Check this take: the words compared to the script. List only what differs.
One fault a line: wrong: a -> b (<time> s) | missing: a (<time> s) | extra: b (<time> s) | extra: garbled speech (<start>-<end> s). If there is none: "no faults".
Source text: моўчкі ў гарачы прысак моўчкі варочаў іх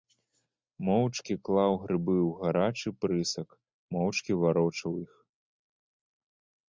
extra: клаў грыбы (1.5 s)